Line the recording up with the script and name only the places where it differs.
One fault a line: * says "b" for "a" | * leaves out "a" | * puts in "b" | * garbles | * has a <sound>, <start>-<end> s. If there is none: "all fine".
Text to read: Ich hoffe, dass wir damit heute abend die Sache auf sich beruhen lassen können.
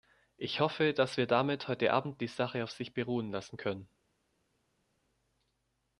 all fine